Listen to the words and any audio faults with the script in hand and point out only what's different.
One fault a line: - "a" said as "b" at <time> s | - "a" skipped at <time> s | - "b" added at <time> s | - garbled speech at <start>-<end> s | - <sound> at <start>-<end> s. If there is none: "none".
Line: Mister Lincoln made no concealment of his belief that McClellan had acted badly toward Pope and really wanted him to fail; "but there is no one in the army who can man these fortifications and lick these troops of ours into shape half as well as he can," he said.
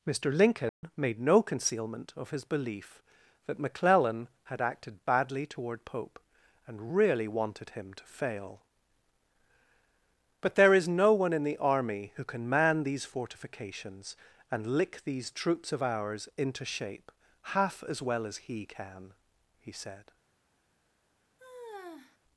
- dropout at 0.7-0.8 s
- sigh at 21.4-22.2 s